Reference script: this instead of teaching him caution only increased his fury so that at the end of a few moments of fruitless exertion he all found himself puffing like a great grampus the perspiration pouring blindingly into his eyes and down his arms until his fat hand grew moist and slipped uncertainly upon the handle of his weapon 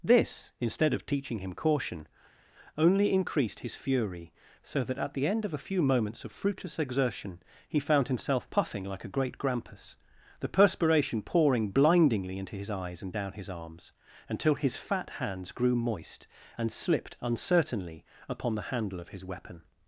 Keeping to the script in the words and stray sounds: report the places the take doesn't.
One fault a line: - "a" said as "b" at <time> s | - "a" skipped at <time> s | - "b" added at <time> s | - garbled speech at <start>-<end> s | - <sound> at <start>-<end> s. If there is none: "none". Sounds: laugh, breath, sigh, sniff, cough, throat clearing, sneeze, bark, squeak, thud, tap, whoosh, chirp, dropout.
- "all" skipped at 7.8 s
- "hand" said as "hands" at 15.1 s